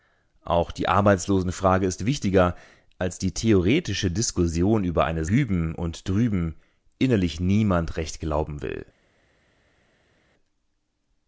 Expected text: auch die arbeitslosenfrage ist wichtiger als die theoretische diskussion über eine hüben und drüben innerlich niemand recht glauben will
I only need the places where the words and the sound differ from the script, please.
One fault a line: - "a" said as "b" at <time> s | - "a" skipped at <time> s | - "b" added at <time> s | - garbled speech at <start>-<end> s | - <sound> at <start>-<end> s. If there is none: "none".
none